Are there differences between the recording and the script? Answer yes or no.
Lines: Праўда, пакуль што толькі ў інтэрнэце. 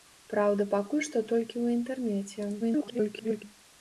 yes